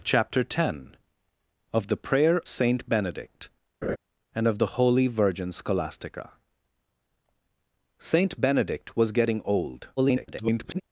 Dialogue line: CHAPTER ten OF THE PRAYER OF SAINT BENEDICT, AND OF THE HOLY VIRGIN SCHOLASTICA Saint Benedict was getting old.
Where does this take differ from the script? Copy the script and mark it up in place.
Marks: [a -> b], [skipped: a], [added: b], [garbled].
CHAPTER ten OF THE PRAYER [skipped: OF] SAINT BENEDICT, AND OF THE HOLY VIRGIN SCHOLASTICA Saint Benedict was getting old. [garbled]